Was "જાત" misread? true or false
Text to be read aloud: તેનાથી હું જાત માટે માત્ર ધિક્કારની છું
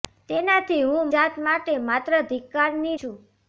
false